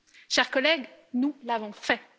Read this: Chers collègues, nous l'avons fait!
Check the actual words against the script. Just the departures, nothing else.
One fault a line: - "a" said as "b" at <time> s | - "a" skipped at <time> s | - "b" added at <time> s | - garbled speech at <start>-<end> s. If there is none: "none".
none